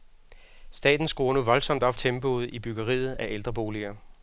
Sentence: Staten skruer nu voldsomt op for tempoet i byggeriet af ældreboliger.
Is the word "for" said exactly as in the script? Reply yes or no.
no